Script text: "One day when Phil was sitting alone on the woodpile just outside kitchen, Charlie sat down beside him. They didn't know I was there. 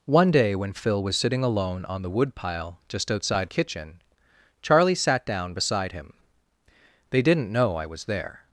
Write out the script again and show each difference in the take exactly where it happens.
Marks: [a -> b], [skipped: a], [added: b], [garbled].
"One day when Phil was sitting alone on the woodpile just outside kitchen, Charlie sat down beside him. They didn't know I was there.